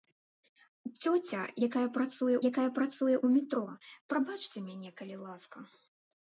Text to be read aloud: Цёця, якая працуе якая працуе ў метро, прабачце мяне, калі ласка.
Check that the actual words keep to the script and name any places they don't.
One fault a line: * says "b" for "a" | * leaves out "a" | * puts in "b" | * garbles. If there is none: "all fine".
all fine